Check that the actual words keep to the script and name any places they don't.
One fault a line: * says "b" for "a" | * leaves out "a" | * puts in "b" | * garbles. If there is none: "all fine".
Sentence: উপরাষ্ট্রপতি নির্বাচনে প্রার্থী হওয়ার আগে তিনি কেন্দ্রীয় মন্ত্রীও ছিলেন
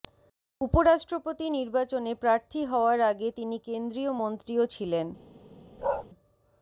all fine